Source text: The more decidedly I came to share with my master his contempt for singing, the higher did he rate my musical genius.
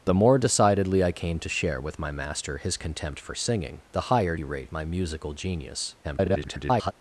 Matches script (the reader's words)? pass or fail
fail